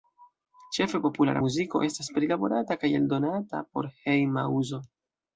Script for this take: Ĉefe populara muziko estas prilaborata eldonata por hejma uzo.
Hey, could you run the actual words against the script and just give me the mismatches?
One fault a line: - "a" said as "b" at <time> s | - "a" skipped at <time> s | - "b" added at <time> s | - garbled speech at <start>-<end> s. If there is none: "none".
- "kaj" added at 2.8 s